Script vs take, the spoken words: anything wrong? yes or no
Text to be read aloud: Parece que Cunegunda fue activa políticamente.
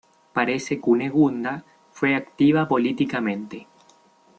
yes